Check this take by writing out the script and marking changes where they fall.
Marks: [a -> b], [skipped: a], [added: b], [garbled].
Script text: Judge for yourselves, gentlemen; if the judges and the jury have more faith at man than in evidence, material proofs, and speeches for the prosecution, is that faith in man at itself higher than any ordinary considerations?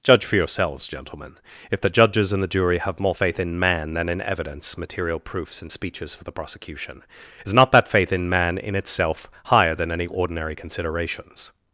Judge for yourselves, gentlemen; if the judges and the jury have more faith [at -> in] man than in evidence, material proofs, and speeches for the prosecution, is [added: not] that faith in man [at -> in] itself higher than any ordinary considerations?